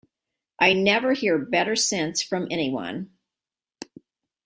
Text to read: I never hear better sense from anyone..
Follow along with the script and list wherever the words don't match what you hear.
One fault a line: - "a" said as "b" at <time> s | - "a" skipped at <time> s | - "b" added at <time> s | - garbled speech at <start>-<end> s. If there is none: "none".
none